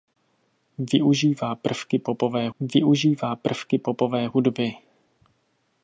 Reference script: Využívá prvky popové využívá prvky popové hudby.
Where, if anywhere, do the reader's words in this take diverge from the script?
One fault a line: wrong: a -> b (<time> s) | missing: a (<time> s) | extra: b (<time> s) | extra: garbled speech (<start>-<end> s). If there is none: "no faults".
no faults